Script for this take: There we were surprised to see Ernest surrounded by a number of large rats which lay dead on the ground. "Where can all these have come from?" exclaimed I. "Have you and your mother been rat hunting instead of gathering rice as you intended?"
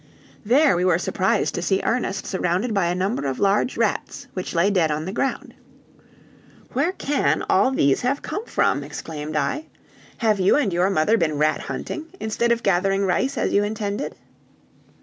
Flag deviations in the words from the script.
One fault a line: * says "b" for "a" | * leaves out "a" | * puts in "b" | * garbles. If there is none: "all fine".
all fine